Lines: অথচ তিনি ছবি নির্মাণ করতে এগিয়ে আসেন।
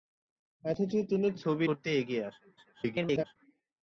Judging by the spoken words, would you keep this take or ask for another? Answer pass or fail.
fail